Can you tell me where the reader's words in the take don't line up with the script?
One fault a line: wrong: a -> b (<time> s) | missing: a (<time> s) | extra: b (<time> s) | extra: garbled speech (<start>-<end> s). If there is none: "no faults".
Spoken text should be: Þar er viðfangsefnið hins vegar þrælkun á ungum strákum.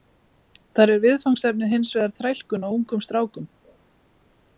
no faults